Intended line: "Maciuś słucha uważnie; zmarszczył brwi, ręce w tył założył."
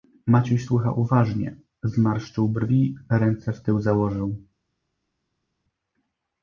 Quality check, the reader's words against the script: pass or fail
pass